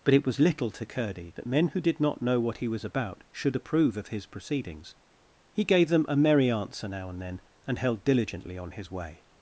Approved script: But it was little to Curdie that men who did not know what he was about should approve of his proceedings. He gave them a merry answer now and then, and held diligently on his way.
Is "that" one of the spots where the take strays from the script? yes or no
no